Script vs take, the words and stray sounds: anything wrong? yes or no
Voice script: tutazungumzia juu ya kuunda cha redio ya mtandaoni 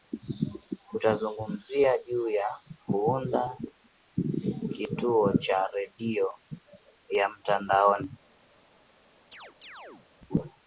yes